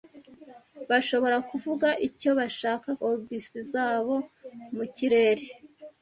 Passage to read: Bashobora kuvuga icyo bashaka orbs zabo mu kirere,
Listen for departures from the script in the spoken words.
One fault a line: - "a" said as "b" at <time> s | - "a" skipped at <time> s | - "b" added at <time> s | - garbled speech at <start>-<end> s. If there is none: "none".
none